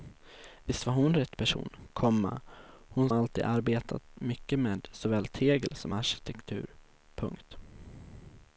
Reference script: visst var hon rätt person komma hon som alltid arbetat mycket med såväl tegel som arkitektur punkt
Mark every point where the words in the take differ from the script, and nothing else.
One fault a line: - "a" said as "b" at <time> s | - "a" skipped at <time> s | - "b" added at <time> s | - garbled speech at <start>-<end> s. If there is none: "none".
- "som" skipped at 3.1 s